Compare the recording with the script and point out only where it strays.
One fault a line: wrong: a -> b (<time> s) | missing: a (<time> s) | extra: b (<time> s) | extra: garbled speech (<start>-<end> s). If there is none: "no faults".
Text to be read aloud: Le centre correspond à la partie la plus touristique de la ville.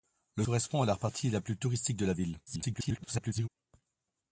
missing: centre (0.5 s)
extra: garbled speech (2.5-3.5 s)